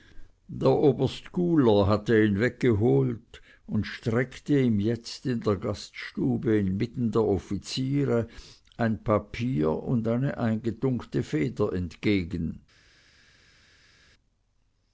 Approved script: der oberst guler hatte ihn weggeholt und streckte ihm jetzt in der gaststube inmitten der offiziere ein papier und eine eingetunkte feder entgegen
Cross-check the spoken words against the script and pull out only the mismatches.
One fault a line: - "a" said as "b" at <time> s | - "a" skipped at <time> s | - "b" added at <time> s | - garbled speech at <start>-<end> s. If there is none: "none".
none